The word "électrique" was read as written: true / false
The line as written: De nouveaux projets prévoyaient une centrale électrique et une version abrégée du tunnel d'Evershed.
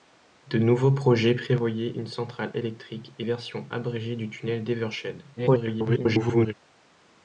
true